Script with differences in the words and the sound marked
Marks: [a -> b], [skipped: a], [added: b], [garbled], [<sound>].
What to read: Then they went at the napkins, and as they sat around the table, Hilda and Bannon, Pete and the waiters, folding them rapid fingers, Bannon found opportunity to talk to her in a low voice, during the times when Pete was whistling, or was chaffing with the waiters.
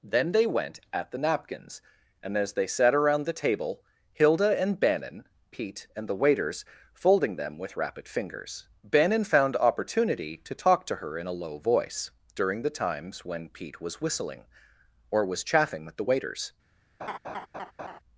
Then they went at the napkins, and as they sat around the table, Hilda and Bannon, Pete and the waiters, folding them [added: with] rapid fingers, Bannon found opportunity to talk to her in a low voice, during the times when Pete was whistling, or was chaffing with the waiters. [laugh]